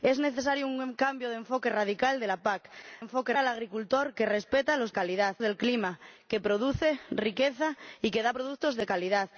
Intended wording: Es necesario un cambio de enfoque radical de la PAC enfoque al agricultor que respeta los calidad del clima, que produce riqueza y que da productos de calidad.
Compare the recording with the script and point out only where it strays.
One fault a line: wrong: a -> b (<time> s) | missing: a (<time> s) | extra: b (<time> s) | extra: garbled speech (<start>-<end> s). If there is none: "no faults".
no faults